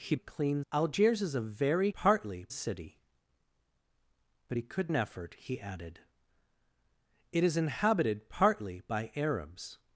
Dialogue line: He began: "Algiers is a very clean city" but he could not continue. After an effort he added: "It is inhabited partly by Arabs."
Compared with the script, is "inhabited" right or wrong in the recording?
right